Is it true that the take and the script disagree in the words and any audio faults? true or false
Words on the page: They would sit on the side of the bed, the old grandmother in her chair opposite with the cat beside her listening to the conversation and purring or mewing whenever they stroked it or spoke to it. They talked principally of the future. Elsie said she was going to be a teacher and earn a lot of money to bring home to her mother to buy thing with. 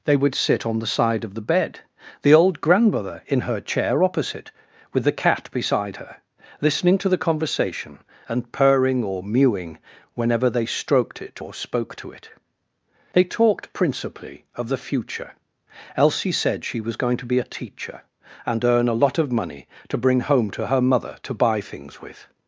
true